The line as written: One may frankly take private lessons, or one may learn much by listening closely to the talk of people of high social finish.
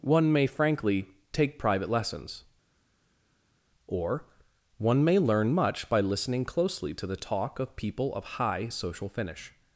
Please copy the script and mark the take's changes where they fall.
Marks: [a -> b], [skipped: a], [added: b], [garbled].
One may frankly take private lessons, or one may learn much by listening closely to the talk of people of high social finish.